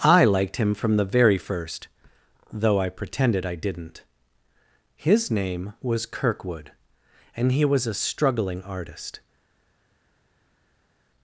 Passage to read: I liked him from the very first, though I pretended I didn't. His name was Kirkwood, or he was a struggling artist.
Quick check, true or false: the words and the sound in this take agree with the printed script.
false